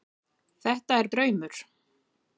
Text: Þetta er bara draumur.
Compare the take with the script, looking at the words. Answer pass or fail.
fail